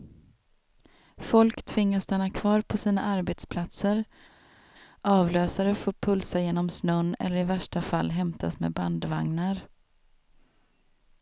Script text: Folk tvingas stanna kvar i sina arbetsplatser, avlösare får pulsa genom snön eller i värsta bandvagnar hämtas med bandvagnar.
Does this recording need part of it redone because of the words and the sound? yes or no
yes